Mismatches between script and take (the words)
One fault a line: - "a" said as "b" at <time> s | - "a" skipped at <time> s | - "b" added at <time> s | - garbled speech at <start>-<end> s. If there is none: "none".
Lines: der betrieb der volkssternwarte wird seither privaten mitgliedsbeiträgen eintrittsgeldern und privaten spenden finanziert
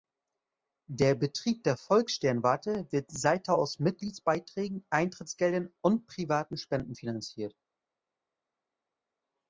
- "privaten" said as "aus" at 3.6 s